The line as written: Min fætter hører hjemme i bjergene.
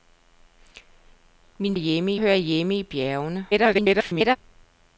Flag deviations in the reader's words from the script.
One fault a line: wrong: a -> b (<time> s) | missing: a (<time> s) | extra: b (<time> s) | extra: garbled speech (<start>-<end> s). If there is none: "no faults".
wrong: fætter -> hjemme (1.7 s)
extra: garbled speech (3.5-4.4 s)